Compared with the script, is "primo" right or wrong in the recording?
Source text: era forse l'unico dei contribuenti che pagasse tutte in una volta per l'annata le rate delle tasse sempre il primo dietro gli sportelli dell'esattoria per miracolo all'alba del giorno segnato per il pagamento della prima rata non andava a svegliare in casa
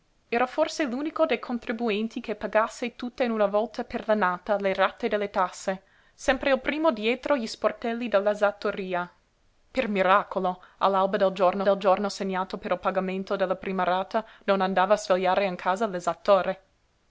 right